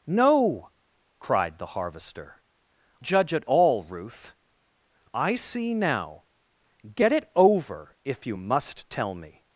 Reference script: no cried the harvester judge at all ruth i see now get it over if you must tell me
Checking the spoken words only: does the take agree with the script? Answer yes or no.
yes